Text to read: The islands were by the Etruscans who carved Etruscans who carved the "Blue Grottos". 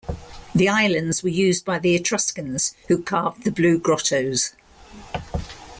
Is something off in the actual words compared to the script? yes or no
yes